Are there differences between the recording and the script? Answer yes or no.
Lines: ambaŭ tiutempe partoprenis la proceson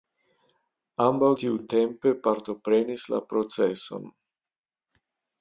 no